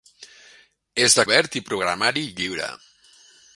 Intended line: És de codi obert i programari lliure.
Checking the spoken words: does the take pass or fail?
fail